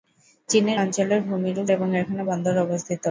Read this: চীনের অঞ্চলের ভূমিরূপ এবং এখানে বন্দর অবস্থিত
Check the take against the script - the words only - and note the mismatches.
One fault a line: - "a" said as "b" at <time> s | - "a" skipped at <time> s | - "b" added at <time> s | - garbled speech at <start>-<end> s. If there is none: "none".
none